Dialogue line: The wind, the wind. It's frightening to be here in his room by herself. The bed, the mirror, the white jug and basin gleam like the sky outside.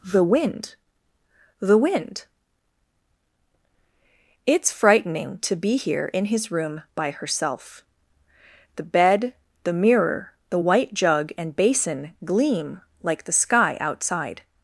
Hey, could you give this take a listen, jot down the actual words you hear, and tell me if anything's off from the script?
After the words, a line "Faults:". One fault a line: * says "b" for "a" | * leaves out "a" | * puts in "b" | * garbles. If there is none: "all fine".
The wind, the wind. It's frightening to be here in his room by herself. The bed, the mirror, the white jug and basin gleam like the sky outside.
Faults:
all fine